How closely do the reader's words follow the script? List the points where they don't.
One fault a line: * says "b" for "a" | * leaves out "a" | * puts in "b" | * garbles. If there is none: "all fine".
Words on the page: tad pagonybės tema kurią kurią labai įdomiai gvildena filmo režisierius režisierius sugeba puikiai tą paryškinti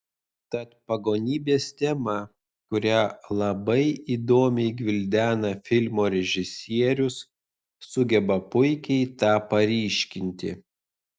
* leaves out "kurią"
* leaves out "režisierius"